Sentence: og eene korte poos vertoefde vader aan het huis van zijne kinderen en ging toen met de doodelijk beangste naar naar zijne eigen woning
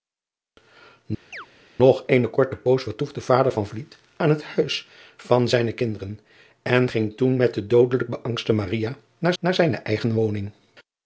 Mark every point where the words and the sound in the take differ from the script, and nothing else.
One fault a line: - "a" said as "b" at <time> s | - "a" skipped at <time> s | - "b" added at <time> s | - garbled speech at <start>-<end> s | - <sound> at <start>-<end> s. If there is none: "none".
- chirp at 1.3-1.5 s